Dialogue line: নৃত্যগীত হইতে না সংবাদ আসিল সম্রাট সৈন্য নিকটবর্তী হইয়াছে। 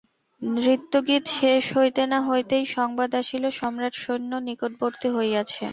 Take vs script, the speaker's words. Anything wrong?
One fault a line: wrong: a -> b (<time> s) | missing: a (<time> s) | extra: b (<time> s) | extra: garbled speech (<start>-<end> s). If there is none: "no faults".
extra: শেষ (1.4 s)
extra: হইতেই (2.3 s)